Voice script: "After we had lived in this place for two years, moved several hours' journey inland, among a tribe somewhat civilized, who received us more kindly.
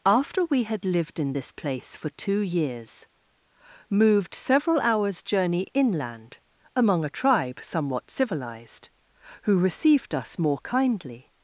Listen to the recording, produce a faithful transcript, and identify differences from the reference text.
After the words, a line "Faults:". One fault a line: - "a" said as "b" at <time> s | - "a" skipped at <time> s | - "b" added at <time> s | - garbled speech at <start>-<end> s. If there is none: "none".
"After we had lived in this place for two years, moved several hours' journey inland, among a tribe somewhat civilized, who received us more kindly.
Faults:
none